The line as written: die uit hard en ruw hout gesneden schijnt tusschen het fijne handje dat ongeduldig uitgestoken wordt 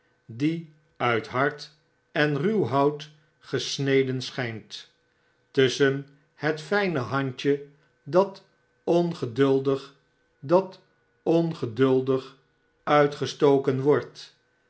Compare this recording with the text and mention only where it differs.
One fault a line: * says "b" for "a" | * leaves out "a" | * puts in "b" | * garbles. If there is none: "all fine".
* puts in "dat ongeduldig"